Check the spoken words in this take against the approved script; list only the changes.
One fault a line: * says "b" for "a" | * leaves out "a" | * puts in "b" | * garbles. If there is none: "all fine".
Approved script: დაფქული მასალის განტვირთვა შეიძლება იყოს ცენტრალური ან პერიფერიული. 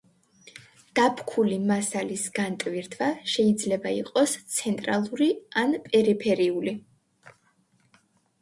all fine